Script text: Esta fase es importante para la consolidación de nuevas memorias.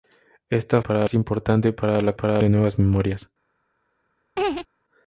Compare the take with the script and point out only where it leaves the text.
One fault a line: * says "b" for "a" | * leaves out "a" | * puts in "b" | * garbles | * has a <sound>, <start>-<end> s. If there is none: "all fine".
* says "para" for "fase"
* says "para" for "consolidación"
* has a laugh, 4.4-4.7 s